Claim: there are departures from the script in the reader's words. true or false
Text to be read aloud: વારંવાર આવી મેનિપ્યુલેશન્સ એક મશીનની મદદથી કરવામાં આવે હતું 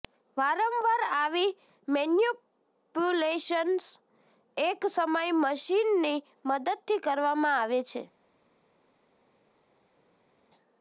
true